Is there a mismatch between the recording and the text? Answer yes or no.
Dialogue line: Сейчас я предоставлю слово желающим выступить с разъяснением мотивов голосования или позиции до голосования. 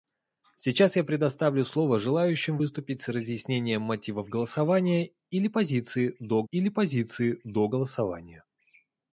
yes